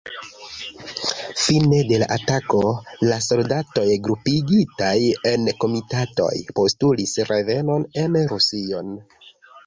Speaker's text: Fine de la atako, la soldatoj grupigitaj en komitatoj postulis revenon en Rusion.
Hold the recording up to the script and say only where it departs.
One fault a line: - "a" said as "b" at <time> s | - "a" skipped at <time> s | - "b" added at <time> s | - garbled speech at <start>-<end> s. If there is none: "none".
none